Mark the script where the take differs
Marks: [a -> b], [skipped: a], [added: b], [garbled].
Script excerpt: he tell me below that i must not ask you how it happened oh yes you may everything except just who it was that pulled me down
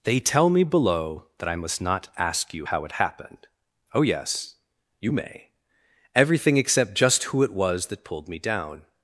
[he -> they] tell me below that i must not ask you how it happened oh yes you may everything except just who it was that pulled me down